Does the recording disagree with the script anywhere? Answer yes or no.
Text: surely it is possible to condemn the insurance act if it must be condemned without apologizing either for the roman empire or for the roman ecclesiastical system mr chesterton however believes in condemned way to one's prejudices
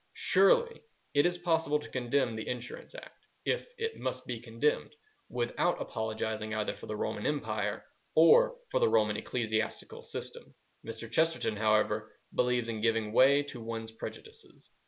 yes